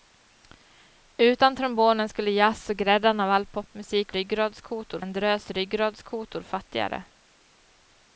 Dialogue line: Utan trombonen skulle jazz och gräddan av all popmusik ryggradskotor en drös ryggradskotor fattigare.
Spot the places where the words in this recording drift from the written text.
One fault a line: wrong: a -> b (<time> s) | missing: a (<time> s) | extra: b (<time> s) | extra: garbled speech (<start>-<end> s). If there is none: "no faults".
no faults